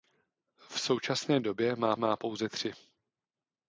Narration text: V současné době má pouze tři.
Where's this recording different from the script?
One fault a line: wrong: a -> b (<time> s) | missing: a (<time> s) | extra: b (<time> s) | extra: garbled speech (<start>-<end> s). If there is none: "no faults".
extra: má (2.0 s)